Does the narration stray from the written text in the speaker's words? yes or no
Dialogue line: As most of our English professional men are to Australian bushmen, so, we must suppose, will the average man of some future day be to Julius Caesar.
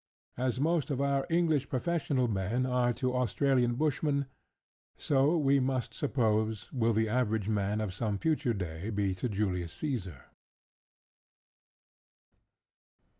no